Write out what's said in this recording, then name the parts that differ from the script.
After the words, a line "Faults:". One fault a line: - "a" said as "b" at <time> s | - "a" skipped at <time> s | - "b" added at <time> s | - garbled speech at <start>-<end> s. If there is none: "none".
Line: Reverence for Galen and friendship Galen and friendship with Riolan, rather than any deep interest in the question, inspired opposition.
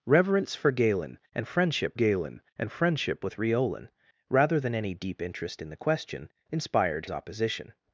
Reverence for Galen and friendship Galen and friendship with Riolan, rather than any deep interest in the question, inspired opposition.
Faults:
none